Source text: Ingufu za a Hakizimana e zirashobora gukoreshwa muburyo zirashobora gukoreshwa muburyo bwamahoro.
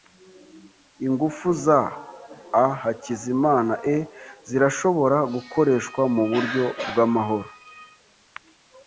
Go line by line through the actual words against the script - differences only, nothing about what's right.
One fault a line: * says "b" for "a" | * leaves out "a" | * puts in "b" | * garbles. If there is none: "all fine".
* leaves out "zirashobora gukoreshwa muburyo"